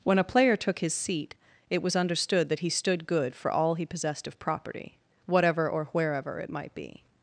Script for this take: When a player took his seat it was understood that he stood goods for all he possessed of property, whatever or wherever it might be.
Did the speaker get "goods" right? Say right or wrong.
wrong